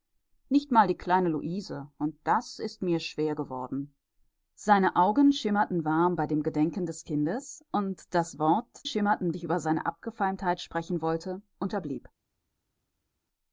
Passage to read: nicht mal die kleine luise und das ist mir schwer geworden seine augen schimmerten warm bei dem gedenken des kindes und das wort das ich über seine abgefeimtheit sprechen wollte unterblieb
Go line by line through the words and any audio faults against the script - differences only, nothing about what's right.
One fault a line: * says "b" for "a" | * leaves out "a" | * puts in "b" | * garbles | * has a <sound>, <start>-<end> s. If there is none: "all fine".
* says "schimmerten" for "das"